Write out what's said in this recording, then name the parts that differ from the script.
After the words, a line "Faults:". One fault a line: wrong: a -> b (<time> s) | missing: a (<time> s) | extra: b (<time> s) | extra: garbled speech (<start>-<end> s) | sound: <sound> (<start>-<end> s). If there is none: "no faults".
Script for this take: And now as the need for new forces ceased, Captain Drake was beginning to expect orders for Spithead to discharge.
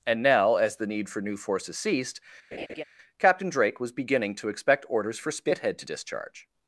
And now as the need for new forces ceased, Captain Drake was beginning to expect orders for Spithead to discharge.
Faults:
sound: laugh (2.5-2.8 s)